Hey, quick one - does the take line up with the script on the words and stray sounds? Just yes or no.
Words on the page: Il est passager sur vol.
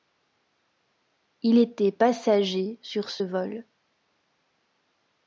no